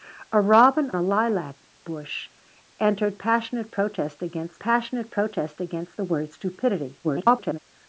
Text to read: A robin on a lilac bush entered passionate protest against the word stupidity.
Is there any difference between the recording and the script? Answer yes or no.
yes